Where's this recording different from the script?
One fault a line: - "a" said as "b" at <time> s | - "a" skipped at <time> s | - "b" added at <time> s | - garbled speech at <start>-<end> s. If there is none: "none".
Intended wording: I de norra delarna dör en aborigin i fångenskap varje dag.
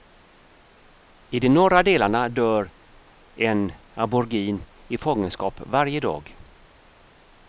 none